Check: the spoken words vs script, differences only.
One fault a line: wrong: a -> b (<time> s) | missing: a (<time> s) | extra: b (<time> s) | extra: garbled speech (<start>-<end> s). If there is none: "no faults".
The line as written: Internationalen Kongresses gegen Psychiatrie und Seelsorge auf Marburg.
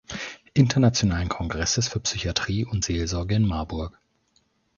wrong: gegen -> für (1.9 s)
wrong: auf -> in (3.3 s)